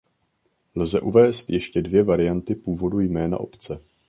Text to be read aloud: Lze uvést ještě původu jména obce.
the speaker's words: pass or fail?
fail